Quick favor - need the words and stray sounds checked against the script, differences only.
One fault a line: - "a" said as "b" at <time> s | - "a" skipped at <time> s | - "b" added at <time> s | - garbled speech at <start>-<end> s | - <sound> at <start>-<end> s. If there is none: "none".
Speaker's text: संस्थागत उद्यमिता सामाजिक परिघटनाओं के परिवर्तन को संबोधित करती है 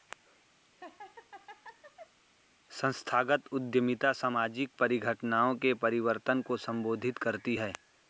- laugh at 0.6-2.2 s